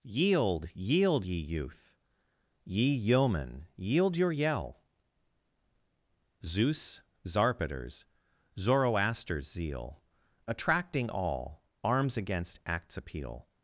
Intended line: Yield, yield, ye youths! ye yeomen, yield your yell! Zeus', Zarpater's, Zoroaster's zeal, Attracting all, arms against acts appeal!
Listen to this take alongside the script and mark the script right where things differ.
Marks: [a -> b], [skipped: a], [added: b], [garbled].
Yield, yield, ye [youths! -> youth] ye yeomen, yield your yell! Zeus', Zarpater's, Zoroaster's zeal, Attracting all, arms against acts appeal!